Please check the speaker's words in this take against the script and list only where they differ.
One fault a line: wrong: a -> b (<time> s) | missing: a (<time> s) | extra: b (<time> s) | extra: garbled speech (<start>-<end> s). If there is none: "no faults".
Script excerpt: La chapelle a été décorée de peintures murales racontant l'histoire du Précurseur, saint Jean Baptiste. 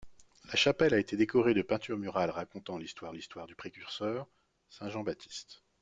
extra: l'histoire (3.1 s)